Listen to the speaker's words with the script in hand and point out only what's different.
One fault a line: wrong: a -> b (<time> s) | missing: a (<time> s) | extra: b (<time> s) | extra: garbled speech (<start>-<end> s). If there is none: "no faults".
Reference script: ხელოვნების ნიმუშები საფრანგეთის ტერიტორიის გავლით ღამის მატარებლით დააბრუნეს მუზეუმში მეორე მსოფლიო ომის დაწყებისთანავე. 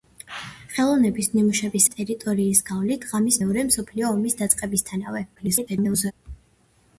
missing: საფრანგეთის (1.8 s)
missing: მატარებლით დააბრუნეს მუზეუმში (3.4 s)
extra: garbled speech (5.4-6.1 s)